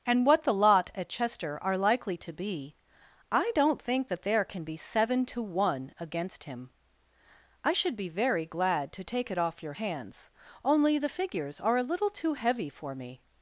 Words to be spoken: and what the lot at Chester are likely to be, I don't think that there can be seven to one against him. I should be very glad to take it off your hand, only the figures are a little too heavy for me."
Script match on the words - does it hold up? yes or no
no